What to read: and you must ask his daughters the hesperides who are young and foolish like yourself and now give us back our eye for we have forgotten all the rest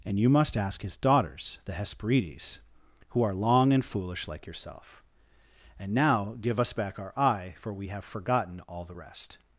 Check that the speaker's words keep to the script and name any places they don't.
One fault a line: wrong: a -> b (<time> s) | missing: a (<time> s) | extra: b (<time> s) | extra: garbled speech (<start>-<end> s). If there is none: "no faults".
wrong: young -> long (3.3 s)